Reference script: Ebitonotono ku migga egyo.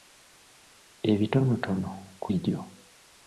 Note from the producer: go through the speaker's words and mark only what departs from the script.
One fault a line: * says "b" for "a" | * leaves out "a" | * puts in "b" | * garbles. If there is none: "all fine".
* leaves out "migga"